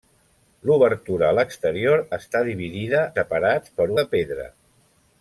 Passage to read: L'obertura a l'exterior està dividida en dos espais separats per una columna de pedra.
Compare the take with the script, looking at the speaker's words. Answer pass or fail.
fail